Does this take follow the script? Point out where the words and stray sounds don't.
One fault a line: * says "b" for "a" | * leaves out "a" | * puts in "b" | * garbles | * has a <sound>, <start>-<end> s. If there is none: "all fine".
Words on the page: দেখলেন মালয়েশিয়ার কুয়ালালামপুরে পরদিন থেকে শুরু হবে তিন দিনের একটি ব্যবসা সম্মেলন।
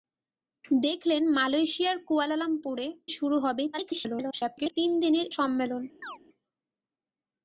* leaves out "পরদিন থেকে"
* garbles
* leaves out "একটি ব্যবসা"
* has a chirp, 6.0-6.2 s